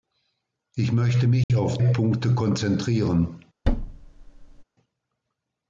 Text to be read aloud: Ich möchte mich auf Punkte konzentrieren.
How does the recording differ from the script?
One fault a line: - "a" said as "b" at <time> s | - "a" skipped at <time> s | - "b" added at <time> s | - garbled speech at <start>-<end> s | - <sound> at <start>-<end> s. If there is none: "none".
- dropout at 1.4-1.5 s
- thud at 3.6-4.6 s